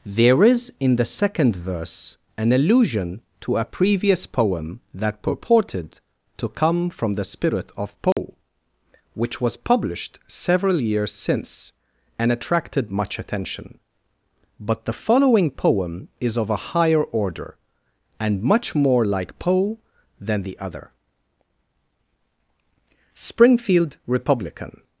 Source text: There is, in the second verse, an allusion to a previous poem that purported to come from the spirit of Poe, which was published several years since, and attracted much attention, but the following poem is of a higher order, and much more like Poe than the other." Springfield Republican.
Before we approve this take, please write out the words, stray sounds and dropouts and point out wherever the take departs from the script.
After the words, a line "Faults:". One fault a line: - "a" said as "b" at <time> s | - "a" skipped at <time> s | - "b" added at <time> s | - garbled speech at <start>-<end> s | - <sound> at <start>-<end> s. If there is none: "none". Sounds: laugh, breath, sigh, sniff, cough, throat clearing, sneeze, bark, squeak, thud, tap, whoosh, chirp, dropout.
There is, in the second verse, an allusion to a previous poem that purported to come from the spirit of Poe, which was published several years since, and attracted much attention, but the following poem is of a higher order, and much more like Poe than the other." Springfield Republican.
Faults:
- dropout at 8.1-8.2 s